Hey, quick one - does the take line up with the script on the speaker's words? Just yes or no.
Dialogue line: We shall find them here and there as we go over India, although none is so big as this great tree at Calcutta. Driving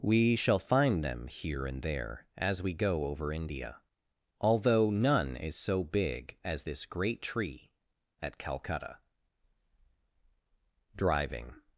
yes